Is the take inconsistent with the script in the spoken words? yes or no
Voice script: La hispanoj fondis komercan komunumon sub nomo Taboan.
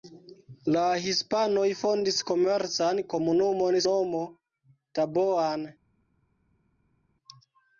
yes